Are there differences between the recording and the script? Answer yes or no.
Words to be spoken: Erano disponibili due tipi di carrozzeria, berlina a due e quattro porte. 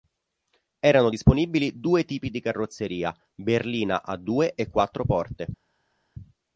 no